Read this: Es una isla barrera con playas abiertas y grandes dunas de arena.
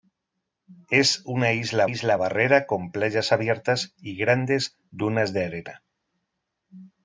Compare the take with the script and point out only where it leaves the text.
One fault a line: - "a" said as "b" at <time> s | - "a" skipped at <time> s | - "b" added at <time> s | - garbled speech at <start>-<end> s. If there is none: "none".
- "isla" added at 1.8 s